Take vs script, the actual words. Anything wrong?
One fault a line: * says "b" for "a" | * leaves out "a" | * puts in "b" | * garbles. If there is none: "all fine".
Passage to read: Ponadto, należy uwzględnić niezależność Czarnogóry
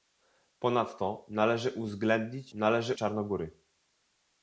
* says "należy" for "niezależność"